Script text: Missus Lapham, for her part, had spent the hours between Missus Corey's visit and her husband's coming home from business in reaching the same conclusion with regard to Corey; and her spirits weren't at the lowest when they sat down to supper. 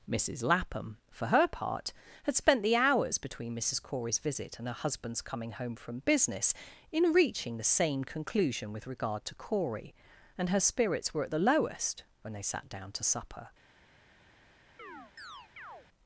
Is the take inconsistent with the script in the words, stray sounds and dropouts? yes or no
yes